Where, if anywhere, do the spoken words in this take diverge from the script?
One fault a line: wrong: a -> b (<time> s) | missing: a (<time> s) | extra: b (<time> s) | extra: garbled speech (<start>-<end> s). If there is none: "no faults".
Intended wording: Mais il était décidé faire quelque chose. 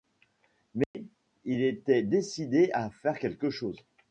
extra: à (2.7 s)